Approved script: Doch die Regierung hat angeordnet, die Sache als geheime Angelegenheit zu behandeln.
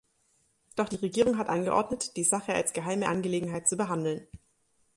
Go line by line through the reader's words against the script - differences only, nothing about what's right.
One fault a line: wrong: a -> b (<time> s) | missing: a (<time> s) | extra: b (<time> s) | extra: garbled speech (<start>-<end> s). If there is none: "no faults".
no faults